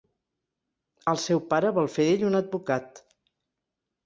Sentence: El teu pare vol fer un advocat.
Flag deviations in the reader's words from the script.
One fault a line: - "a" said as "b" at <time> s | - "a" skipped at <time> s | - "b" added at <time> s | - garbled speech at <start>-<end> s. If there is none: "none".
- "teu" said as "seu" at 1.2 s
- "d'ell" added at 2.1 s